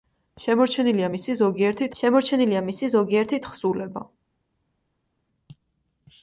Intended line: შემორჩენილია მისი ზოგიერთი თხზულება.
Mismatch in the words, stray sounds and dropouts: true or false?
true